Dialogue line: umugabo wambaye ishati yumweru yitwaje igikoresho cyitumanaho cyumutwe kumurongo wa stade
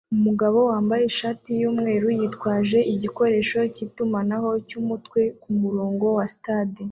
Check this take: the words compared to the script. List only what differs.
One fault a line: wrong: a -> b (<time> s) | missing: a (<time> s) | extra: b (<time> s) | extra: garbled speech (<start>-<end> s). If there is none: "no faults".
no faults